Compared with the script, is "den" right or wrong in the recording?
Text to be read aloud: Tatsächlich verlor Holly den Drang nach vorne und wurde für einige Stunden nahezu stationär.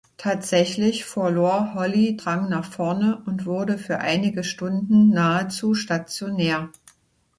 wrong